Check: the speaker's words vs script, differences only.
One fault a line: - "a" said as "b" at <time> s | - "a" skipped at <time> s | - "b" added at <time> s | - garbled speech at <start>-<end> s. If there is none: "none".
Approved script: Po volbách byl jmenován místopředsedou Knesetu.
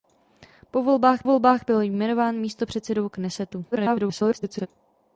- "volbách" added at 1.2 s
- garbled speech at 3.7-4.7 s